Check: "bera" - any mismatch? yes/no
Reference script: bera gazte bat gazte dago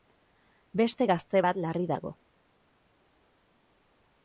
yes